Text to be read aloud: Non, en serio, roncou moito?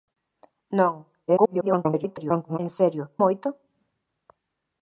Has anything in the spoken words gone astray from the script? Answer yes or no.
yes